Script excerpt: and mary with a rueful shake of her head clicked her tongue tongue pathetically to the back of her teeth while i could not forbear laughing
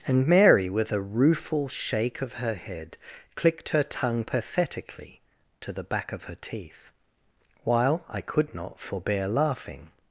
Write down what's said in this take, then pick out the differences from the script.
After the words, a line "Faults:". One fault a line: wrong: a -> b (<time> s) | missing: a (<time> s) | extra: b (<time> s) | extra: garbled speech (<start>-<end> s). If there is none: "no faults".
and mary with a rueful shake of her head clicked her tongue pathetically to the back of her teeth while i could not forbear laughing
Faults:
missing: tongue (4.2 s)